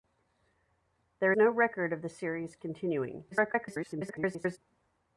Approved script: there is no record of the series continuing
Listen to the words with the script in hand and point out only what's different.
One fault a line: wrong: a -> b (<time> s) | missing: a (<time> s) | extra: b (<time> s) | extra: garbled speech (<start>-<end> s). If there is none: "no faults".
missing: is (1.3 s)
extra: garbled speech (3.3-4.6 s)